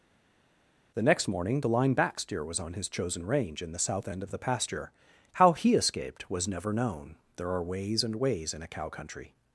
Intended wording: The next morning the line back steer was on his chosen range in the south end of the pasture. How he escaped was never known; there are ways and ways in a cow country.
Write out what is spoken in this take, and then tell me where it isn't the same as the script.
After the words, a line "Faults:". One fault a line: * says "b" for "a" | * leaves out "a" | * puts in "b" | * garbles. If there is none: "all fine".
The next morning the line back steer was on his chosen range in the south end of the pasture. How he escaped was never known; there are ways and ways in a cow country.
Faults:
all fine